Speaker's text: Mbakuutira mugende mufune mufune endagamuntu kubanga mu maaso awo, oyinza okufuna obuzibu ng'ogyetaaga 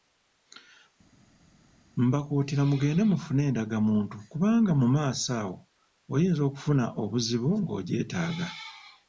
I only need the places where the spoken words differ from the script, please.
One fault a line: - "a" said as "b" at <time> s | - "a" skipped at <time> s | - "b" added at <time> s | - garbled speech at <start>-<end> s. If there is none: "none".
- "mufune" skipped at 3.4 s